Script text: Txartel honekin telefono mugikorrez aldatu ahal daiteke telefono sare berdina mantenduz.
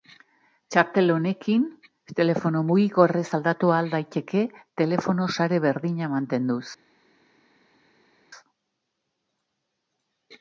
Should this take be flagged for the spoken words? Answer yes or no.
no